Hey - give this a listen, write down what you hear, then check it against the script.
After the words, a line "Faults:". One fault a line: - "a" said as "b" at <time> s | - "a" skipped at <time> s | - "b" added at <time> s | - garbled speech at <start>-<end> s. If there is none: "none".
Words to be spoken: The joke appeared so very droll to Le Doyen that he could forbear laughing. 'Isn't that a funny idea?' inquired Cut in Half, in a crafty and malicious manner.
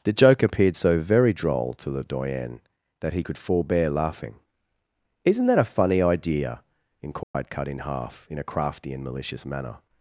The joke appeared so very droll to Le Doyen that he could forbear laughing. 'Isn't that a funny idea?' inquired Cut in Half, in a crafty and malicious manner.
Faults:
none